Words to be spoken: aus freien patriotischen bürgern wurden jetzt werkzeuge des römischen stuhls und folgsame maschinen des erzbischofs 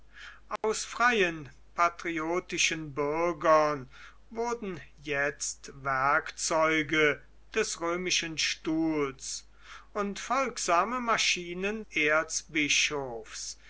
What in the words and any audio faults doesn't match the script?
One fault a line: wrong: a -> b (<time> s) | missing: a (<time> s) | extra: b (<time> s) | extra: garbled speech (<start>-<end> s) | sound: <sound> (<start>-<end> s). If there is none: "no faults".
sound: dropout (0.6-0.6 s)
missing: des (11.8 s)